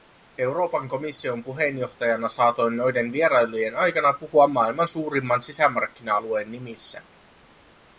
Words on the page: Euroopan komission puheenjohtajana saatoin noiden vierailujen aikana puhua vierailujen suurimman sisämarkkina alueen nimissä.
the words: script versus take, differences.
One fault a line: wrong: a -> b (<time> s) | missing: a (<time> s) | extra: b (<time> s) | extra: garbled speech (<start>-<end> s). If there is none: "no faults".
wrong: vierailujen -> maailman (4.4 s)